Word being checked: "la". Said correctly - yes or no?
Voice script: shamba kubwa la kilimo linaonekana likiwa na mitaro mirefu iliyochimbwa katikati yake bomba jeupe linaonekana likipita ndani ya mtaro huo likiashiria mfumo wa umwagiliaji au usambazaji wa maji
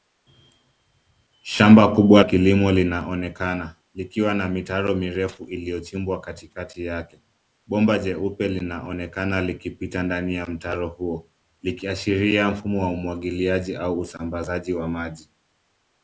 no